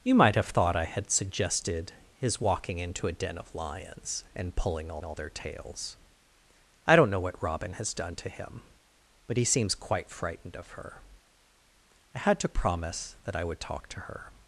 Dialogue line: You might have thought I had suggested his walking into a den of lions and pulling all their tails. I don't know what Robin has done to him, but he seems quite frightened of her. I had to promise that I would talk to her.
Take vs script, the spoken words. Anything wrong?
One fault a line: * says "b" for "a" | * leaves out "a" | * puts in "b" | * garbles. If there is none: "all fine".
* puts in "all"